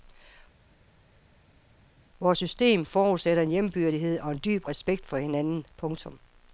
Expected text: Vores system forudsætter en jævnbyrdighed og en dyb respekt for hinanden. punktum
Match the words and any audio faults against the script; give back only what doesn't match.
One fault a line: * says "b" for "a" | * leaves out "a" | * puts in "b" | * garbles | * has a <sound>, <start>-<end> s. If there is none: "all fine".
all fine